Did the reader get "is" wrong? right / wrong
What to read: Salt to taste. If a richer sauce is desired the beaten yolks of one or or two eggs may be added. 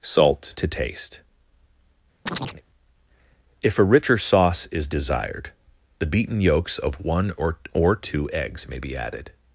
right